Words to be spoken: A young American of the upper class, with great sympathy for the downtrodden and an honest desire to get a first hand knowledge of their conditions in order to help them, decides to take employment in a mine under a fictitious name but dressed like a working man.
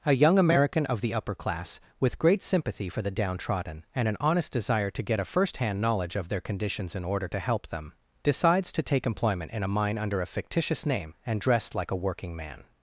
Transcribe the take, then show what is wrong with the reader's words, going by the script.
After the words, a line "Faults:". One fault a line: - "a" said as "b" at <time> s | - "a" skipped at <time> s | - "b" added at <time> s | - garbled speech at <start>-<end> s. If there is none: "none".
A young American of the upper class, with great sympathy for the downtrodden and an honest desire to get a first hand knowledge of their conditions in order to help them, decides to take employment in a mine under a fictitious name and dressed like a working man.
Faults:
- "but" said as "and" at 11.3 s